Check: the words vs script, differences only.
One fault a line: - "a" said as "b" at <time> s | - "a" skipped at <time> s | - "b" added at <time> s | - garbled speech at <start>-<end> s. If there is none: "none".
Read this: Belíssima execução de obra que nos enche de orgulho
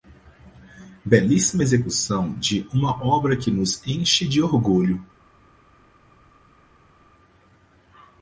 - "uma" added at 2.7 s